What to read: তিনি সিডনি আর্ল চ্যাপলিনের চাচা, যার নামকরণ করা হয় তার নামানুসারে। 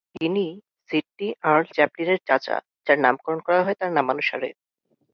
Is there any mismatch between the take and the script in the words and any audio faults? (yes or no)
no